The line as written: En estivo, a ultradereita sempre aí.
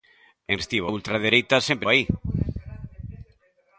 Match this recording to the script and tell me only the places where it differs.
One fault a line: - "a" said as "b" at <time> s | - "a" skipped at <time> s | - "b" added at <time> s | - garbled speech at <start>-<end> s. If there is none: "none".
none